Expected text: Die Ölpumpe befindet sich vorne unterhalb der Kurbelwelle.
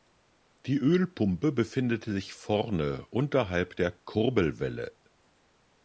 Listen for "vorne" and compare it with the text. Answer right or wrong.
right